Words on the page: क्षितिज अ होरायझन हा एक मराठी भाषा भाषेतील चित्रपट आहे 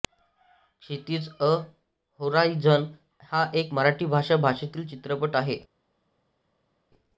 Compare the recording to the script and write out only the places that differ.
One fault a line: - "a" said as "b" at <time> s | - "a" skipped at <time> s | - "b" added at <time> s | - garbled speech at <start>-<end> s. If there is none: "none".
none